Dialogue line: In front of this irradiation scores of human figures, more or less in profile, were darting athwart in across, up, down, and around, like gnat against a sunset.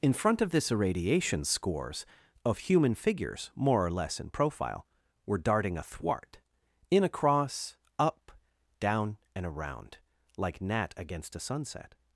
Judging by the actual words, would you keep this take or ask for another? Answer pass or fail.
pass